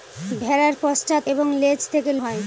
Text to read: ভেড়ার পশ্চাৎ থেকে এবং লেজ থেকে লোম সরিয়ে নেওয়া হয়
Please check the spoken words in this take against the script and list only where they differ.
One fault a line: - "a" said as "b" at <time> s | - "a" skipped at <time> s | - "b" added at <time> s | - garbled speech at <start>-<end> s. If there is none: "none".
- "থেকে" skipped at 1.2 s
- "লোম সরিয়ে নেওয়া" skipped at 2.1 s